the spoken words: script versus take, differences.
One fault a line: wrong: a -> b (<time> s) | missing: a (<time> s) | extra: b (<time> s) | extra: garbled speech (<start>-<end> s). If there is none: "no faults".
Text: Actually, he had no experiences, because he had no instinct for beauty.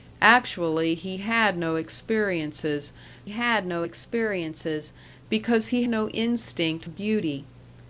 extra: had no experiences (3.3 s)
missing: had (5.8 s)
missing: for (6.8 s)